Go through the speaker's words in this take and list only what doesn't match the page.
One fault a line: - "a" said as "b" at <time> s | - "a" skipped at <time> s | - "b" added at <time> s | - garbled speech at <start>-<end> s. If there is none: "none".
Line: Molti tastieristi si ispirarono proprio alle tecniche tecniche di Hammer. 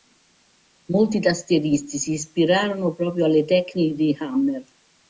- "tecniche" skipped at 3.9 s